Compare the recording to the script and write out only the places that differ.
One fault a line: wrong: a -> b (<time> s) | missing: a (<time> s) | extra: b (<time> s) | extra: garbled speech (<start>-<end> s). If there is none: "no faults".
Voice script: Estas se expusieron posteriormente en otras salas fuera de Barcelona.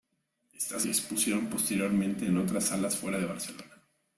no faults